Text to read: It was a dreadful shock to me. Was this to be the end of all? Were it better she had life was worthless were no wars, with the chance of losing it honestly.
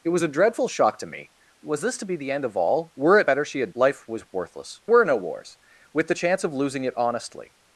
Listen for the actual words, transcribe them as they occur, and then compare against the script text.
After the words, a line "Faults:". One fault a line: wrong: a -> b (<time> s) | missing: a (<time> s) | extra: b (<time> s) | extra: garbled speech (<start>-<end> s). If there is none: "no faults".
It was a dreadful shock to me. Was this to be the end of all? Were it better she had life was worthless were no wars, with the chance of losing it honestly.
Faults:
no faults